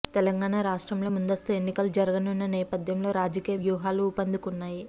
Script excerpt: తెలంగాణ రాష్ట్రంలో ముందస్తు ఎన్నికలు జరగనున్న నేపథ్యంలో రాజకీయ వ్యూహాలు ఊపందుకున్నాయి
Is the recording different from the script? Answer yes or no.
no